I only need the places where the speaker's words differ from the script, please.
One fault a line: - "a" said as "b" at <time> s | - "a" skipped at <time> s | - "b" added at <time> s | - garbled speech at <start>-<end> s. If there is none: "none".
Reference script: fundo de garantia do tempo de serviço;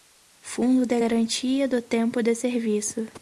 none